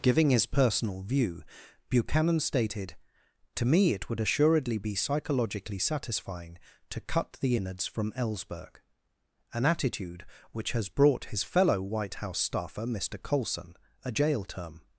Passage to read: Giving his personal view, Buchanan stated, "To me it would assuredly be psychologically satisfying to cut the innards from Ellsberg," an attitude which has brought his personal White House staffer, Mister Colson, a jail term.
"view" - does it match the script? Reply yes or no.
yes